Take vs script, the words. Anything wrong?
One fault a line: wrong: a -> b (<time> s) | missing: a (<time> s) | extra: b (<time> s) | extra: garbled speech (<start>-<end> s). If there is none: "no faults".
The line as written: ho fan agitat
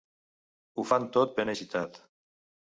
extra: tot ben (1.2 s)